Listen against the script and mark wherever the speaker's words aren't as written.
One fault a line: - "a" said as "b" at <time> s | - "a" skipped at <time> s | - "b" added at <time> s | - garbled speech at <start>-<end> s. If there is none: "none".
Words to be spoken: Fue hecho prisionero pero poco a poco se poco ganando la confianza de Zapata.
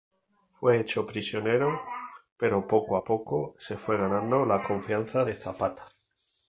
- "poco" said as "fue" at 3.8 s